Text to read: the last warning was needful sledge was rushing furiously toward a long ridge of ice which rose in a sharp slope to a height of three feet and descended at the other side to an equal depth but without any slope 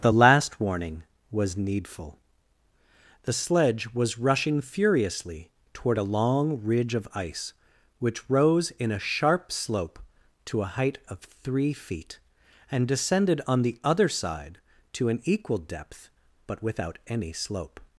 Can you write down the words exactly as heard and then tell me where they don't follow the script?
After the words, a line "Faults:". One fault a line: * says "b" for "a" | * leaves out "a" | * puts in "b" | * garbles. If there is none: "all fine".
the last warning was needful the sledge was rushing furiously toward a long ridge of ice which rose in a sharp slope to a height of three feet and descended on the other side to an equal depth but without any slope
Faults:
* puts in "the"
* says "on" for "at"